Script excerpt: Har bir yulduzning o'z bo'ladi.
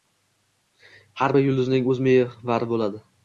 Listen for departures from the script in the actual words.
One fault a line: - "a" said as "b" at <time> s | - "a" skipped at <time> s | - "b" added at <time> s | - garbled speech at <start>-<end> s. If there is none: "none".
- "mehvari" added at 2.1 s